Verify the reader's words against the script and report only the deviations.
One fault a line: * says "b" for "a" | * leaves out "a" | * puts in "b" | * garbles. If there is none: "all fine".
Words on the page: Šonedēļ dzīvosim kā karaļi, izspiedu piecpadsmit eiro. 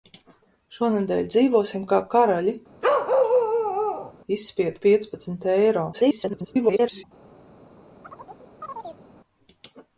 * garbles